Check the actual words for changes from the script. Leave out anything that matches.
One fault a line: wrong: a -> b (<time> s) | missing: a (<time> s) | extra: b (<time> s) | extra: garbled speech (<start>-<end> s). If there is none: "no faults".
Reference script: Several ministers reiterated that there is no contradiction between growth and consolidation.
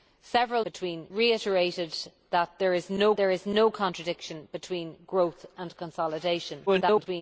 wrong: ministers -> between (0.6 s)
extra: there is no (3.2 s)
extra: garbled speech (6.7-7.2 s)